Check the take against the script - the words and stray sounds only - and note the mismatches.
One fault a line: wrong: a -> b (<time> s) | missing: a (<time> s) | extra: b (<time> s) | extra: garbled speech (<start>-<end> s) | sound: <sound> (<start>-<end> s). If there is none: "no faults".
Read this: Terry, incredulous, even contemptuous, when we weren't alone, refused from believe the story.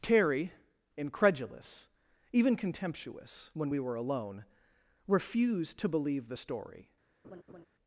wrong: weren't -> were (3.8 s)
wrong: from -> to (5.8 s)
sound: laugh (7.2-7.7 s)